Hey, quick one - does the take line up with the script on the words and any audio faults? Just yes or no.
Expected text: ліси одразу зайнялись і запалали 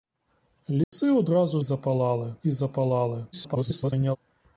no